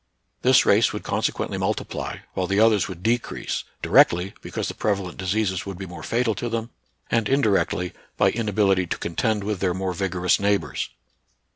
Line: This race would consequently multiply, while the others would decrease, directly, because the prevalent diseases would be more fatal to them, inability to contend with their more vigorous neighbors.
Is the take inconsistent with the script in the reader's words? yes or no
yes